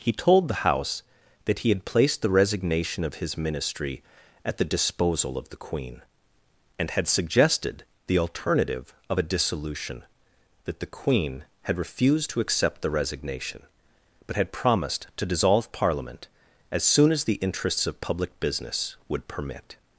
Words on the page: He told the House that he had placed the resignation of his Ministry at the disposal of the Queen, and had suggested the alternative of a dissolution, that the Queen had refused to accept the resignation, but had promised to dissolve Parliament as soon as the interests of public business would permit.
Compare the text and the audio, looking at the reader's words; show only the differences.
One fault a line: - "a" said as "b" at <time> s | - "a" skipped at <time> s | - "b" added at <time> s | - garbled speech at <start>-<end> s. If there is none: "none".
none